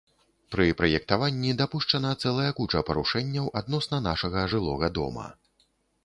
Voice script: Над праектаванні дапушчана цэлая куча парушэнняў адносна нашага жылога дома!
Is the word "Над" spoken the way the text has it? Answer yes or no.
no